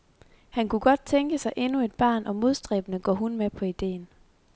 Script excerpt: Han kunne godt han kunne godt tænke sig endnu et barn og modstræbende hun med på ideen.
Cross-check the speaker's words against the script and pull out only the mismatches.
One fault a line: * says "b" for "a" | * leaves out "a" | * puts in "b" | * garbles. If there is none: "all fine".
* leaves out "han kunne godt"
* puts in "går"